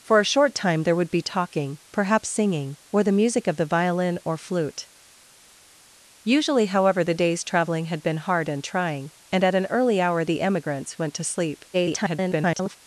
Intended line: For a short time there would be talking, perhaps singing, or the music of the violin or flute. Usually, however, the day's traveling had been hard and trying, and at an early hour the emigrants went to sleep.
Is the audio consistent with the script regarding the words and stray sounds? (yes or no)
no